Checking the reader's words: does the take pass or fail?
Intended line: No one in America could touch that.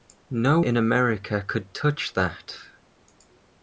fail